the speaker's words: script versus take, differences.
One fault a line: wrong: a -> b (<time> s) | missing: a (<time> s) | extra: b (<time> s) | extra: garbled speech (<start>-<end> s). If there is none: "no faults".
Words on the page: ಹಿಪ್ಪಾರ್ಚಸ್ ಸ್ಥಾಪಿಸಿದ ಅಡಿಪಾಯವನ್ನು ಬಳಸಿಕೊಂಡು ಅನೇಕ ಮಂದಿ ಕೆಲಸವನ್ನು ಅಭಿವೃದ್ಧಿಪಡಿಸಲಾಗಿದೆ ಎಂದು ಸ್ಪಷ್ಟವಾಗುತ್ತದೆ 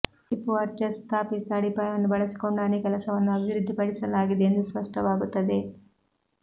missing: ಮಂದಿ (2.9 s)